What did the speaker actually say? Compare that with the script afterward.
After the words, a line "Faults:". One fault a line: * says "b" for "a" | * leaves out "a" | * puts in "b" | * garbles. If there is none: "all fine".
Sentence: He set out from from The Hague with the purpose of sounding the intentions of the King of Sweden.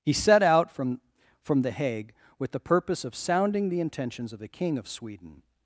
He set out from from The Hague with the purpose of sounding the intentions of the King of Sweden.
Faults:
all fine